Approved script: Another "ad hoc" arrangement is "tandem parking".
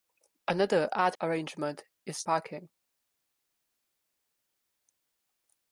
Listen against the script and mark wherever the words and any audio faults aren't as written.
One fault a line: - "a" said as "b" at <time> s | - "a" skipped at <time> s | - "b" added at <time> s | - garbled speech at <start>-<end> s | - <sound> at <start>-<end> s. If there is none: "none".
- "hoc" skipped at 1.1 s
- "tandem" skipped at 2.2 s